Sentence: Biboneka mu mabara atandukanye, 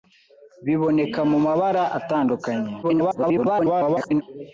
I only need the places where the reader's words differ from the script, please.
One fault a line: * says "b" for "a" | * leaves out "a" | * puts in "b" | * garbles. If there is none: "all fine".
* garbles